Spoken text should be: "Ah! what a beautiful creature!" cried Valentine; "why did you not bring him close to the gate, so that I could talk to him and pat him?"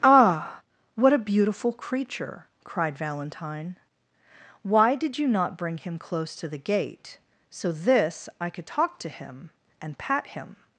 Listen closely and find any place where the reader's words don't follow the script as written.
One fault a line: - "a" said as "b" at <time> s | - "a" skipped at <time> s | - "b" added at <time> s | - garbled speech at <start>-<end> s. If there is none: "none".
- "that" said as "this" at 7.7 s